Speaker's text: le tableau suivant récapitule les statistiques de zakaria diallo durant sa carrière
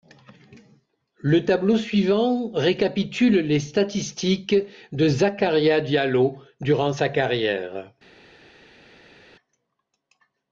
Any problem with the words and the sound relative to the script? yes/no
no